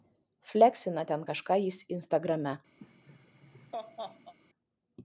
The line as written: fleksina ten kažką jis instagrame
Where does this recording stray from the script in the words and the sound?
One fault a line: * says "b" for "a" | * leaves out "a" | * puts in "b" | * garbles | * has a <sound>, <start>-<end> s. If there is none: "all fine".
* has a laugh, 2.8-4.3 s